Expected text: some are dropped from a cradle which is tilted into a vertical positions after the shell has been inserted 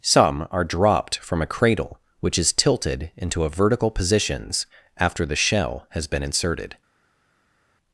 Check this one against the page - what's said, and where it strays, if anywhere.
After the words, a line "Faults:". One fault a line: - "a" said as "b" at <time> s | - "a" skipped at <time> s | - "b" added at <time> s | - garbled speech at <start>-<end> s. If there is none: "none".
some are dropped from a cradle which is tilted into a vertical positions after the shell has been inserted
Faults:
none